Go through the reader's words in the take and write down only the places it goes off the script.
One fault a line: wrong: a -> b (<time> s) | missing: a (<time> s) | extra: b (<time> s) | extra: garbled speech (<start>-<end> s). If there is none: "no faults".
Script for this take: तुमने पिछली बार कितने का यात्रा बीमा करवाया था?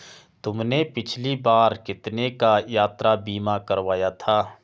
no faults